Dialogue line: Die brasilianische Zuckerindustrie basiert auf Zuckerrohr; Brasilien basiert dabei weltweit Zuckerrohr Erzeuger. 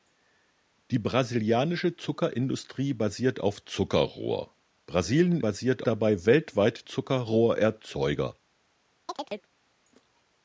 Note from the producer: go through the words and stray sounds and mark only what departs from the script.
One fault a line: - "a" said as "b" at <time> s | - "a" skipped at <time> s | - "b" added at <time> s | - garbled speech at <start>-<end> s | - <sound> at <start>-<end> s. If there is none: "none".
- chirp at 9.1-9.5 s